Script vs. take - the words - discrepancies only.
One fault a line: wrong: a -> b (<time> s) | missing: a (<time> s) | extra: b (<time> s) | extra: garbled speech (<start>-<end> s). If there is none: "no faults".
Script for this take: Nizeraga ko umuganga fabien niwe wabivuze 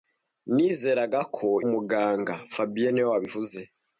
no faults